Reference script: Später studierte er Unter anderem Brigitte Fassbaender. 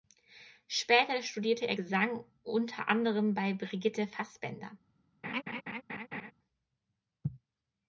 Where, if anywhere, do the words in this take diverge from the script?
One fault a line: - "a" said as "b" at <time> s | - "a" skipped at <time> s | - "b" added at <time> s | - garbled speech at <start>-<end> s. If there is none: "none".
- "Gesang" added at 1.7 s
- "bei" added at 3.3 s